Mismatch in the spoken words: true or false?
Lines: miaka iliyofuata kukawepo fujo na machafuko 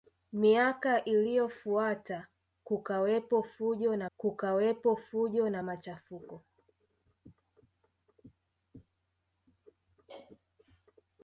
true